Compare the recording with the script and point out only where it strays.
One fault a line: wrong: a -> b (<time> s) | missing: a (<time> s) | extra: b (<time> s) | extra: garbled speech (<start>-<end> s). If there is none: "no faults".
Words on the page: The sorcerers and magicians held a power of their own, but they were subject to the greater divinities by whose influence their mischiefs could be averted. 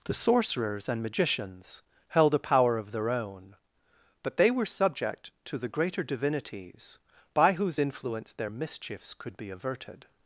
no faults